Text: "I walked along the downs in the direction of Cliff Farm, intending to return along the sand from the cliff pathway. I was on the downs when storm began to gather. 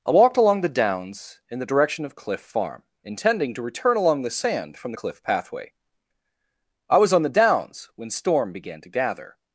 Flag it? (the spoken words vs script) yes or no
no